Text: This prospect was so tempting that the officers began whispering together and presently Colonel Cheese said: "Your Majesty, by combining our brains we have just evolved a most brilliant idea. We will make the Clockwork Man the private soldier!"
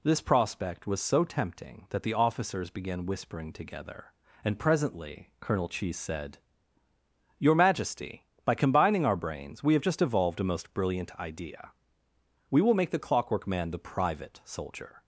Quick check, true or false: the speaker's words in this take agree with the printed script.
true